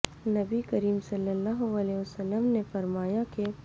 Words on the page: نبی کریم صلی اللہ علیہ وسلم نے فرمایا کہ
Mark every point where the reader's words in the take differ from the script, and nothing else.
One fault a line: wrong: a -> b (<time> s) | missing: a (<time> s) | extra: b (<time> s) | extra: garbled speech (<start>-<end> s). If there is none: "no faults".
no faults